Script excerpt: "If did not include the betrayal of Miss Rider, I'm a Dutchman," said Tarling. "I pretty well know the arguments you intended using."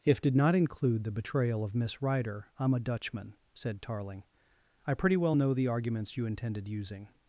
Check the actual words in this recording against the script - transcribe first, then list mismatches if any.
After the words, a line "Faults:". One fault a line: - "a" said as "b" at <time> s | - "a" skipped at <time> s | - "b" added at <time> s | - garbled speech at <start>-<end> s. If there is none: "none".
"If did not include the betrayal of Miss Rider, I'm a Dutchman," said Tarling. "I pretty well know the arguments you intended using."
Faults:
none